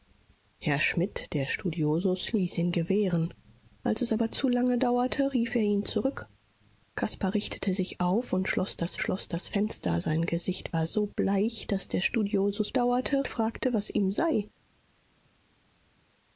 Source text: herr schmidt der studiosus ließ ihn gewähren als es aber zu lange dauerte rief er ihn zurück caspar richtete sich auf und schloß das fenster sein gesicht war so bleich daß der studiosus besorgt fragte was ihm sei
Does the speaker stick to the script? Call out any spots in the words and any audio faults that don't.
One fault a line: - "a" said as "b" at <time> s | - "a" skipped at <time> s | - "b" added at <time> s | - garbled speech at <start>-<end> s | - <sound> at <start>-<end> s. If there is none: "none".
- "schloß das" added at 9.0 s
- "besorgt" said as "dauerte" at 12.7 s